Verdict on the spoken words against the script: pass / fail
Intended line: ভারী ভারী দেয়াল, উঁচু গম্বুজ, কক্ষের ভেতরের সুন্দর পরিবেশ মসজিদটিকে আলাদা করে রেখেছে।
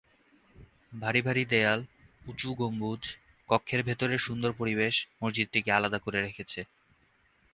pass